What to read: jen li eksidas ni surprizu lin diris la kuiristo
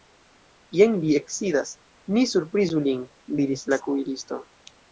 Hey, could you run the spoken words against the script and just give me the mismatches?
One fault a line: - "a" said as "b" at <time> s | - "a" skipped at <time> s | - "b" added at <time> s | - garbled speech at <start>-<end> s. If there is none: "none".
none